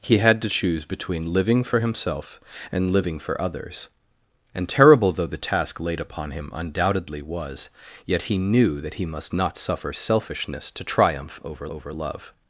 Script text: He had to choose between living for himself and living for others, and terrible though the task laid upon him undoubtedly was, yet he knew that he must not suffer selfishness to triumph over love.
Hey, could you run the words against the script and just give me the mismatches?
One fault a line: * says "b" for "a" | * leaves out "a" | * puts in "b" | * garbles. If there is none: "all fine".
* puts in "over"